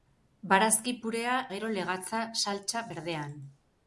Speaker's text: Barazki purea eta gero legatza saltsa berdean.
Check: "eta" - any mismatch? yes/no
yes